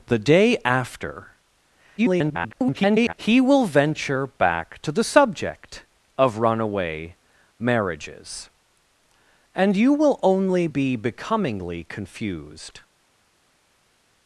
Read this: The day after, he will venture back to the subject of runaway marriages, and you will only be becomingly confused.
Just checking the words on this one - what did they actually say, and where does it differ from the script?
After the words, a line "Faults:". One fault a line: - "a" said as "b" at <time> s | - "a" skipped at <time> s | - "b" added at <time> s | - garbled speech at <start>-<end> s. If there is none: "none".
The day after, [garbled] he will venture back to the subject of runaway marriages, and you will only be becomingly confused.
Faults:
- garbled speech at 2.0-3.1 s